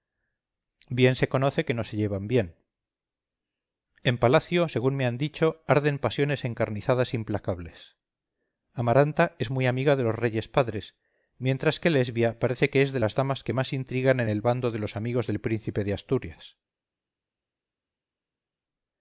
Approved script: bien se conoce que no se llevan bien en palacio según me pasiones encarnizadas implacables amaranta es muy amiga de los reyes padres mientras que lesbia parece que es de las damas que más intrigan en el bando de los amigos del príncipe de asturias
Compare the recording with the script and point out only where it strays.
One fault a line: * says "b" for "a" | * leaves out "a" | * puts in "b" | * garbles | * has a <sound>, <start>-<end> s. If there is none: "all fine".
* puts in "han dicho arden"